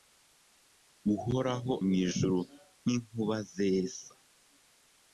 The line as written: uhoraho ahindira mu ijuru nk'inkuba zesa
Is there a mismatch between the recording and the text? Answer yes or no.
yes